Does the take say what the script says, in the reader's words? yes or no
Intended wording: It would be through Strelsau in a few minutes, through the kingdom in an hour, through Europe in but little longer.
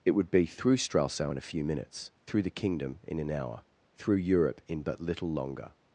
yes